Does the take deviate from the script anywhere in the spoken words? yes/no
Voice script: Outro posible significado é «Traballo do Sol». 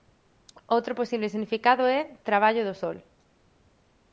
no